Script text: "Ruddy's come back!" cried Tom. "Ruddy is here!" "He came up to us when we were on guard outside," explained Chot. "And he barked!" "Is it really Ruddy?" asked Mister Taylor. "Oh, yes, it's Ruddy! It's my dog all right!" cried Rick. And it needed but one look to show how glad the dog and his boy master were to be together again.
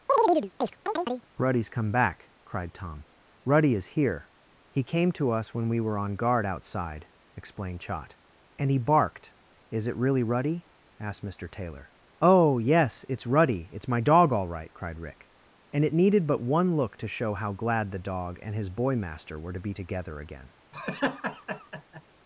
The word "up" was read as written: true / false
false